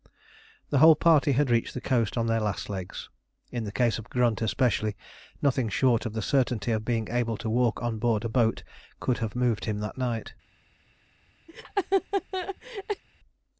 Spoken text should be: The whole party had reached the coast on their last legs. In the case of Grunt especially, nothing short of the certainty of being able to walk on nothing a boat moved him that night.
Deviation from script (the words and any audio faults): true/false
true